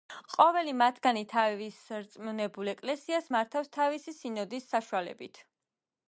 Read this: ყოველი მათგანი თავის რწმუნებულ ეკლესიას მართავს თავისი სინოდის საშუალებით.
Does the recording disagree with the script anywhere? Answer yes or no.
no